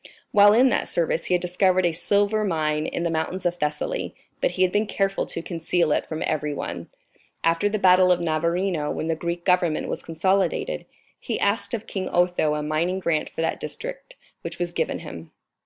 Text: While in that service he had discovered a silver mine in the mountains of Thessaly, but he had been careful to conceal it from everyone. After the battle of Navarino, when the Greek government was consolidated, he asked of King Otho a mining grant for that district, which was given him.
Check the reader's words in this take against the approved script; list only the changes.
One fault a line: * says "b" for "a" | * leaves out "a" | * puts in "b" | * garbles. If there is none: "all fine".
all fine